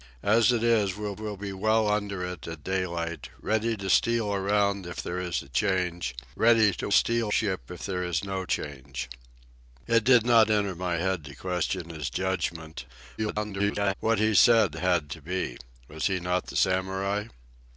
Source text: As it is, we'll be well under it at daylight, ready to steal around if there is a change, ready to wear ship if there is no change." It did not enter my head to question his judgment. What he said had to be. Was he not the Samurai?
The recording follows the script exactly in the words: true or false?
false